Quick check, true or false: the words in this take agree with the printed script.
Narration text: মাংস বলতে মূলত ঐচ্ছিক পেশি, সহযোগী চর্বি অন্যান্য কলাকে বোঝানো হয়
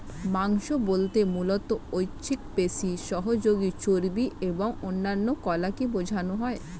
false